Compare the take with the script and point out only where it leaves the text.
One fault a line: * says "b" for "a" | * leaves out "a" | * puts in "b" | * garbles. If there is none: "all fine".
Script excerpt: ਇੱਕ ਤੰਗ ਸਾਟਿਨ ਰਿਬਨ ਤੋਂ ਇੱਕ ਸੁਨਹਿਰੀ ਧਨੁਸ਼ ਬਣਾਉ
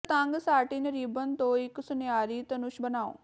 all fine